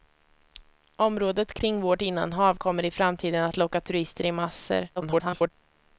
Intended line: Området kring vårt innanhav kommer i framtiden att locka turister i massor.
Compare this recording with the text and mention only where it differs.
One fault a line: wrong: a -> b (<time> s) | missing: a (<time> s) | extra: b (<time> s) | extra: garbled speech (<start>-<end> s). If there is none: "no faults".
extra: garbled speech (5.0-5.5 s)